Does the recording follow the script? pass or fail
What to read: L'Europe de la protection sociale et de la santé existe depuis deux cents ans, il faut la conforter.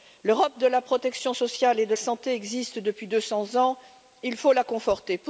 fail